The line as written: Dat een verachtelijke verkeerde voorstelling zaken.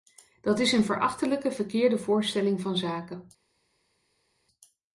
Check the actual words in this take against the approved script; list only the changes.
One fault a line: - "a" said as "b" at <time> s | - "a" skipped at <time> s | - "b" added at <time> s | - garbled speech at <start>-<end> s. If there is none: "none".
- "is" added at 0.6 s
- "van" added at 2.6 s